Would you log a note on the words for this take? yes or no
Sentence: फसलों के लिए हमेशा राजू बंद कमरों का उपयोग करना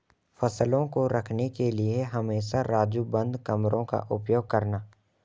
yes